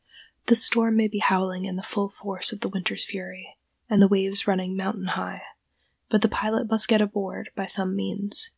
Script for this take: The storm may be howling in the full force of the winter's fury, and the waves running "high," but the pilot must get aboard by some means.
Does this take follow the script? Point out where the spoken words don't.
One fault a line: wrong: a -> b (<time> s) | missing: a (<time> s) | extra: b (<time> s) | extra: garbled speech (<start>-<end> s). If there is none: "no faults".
extra: mountain (4.8 s)